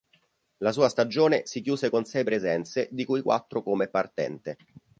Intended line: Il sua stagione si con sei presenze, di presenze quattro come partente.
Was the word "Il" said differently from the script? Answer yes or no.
yes